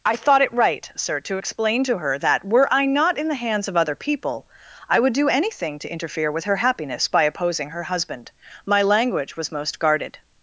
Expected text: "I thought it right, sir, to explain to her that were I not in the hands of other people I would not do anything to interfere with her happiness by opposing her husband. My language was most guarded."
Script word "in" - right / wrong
right